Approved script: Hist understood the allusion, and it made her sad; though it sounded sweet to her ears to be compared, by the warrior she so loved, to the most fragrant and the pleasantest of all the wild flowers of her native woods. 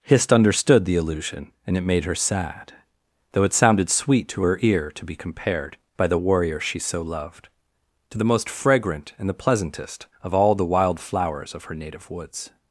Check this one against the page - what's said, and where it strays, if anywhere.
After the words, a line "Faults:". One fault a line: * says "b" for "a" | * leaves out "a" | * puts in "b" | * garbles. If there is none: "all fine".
Hist understood the allusion, and it made her sad; though it sounded sweet to her ear to be compared, by the warrior she so loved, to the most fragrant and the pleasantest of all the wild flowers of her native woods.
Faults:
* says "ear" for "ears"